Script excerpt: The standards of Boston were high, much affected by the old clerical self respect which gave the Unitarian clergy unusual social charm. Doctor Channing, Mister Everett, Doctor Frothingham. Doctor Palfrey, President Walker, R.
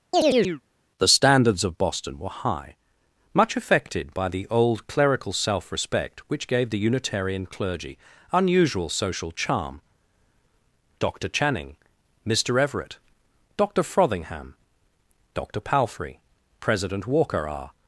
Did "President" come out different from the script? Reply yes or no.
no